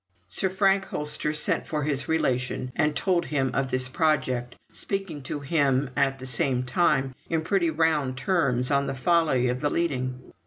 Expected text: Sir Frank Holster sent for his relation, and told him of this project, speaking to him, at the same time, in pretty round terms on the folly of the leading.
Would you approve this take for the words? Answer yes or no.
yes